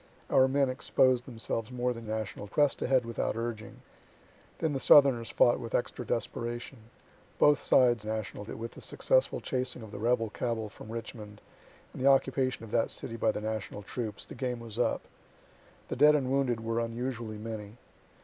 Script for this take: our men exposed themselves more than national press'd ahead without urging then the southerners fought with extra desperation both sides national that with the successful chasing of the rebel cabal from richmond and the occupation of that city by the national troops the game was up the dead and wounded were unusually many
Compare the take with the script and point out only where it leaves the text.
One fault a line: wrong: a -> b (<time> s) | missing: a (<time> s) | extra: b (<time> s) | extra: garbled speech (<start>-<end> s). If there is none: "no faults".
no faults